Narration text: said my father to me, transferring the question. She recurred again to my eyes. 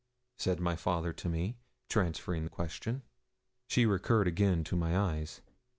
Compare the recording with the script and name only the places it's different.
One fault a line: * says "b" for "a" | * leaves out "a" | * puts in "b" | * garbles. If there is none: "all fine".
all fine